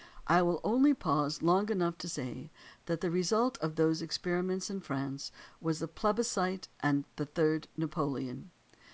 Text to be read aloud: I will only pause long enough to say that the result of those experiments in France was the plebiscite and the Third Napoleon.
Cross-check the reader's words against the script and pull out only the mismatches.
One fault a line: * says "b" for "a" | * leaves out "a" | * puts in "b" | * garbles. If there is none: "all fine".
all fine